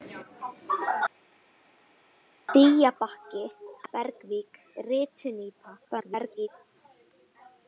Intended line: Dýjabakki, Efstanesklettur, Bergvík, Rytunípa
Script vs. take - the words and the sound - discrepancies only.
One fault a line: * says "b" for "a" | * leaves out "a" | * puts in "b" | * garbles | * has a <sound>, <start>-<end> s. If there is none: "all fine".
* leaves out "Efstanesklettur"
* garbles